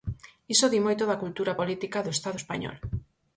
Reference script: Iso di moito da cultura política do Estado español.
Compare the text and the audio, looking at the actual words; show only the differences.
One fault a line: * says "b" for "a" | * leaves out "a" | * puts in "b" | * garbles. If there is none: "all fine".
all fine